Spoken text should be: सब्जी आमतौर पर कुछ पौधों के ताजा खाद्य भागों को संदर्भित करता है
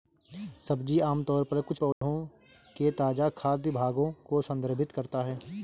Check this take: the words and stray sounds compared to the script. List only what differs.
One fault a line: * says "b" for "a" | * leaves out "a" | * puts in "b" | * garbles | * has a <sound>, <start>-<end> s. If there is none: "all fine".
* has a dropout, 1.9-2.0 s